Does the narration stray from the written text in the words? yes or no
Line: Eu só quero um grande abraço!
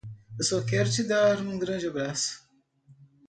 yes